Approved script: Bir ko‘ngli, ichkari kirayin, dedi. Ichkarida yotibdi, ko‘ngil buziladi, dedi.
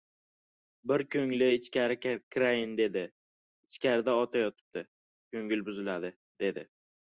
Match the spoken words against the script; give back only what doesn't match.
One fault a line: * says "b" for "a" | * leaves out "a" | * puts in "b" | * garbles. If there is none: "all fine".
* puts in "ota"